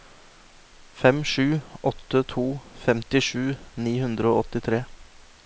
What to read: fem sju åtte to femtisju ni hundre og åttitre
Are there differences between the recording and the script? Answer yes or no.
no